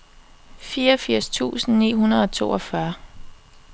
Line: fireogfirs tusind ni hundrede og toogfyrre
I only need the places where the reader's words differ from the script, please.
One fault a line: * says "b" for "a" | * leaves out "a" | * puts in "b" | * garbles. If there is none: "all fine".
all fine